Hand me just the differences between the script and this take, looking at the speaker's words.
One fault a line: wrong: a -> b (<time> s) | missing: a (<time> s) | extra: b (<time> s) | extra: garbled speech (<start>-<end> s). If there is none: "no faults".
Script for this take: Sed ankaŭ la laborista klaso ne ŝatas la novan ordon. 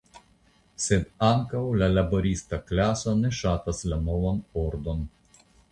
no faults